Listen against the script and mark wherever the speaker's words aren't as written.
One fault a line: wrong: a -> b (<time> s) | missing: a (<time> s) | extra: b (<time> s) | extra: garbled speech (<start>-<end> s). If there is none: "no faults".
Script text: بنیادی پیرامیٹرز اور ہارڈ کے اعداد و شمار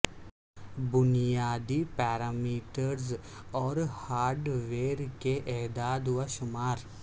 extra: ویئر (4.7 s)